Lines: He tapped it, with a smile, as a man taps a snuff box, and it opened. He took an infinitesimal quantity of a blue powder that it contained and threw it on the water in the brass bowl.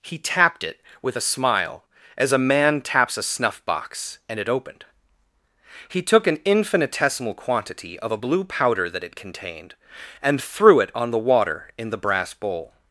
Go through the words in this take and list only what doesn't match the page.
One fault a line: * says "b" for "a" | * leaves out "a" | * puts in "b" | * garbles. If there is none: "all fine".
all fine